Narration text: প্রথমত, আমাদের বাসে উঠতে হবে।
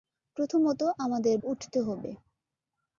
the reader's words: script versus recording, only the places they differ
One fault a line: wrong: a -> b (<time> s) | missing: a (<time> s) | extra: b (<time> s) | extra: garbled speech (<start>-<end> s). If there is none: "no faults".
missing: বাসে (1.4 s)